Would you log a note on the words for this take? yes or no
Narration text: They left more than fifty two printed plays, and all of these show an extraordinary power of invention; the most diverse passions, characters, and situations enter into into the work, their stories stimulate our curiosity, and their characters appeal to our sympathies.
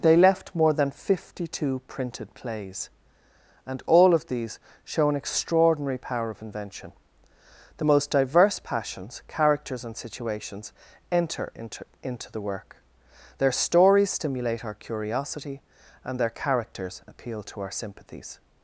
no